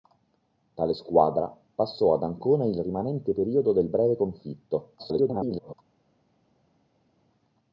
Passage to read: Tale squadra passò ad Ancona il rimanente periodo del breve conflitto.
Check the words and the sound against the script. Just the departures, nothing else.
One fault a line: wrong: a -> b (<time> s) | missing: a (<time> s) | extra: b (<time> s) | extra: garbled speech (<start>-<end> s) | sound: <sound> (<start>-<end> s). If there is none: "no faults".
extra: garbled speech (5.0-5.7 s)